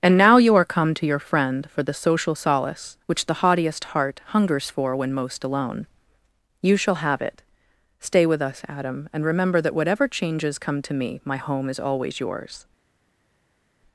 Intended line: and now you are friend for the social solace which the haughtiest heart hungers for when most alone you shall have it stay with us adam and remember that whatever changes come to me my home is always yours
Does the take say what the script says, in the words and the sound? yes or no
no